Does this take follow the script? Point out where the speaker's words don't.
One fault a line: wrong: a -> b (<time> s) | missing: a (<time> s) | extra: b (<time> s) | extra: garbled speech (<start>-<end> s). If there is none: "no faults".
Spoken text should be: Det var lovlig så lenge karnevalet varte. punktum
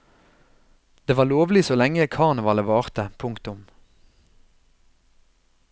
no faults